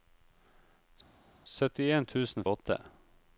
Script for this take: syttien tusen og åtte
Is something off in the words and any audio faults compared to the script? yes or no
no